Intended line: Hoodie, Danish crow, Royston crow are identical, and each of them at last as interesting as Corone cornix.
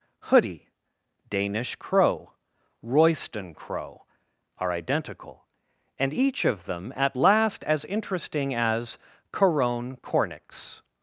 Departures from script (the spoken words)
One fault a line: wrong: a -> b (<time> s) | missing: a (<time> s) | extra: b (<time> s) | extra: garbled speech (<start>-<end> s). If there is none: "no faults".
no faults